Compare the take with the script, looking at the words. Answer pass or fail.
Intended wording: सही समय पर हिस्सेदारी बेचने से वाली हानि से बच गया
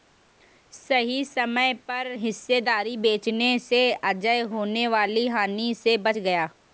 fail